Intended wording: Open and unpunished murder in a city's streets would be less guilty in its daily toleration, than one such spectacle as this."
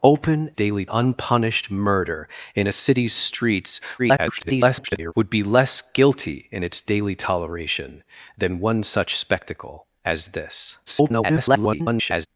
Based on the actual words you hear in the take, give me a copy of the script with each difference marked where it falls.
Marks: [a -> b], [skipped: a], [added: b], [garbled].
Open [and -> daily] unpunished murder in a city's streets [garbled] would be less guilty in its daily toleration, than one such spectacle as this." [garbled]